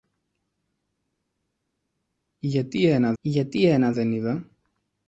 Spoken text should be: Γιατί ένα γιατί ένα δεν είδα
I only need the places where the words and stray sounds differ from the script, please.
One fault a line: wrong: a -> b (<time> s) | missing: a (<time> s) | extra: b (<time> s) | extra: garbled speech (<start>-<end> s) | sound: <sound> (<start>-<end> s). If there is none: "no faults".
no faults